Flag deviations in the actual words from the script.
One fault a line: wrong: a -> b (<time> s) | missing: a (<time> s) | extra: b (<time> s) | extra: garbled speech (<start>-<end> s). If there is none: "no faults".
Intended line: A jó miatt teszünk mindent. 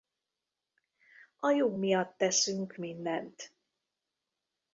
no faults